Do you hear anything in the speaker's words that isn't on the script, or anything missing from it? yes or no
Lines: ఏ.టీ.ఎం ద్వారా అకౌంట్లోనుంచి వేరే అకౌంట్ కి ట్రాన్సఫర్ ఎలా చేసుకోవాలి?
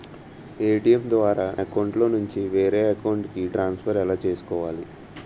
no